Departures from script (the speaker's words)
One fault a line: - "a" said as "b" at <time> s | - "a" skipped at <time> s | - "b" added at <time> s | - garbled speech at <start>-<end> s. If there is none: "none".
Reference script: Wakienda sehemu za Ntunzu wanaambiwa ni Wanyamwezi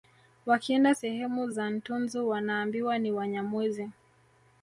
none